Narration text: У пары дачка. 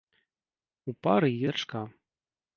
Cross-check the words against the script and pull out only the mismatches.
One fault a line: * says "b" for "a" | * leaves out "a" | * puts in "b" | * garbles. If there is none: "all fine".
all fine